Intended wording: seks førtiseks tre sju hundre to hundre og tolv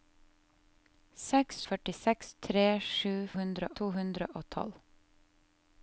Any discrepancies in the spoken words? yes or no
no